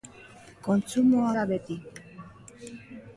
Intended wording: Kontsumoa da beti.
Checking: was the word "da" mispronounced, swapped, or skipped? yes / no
no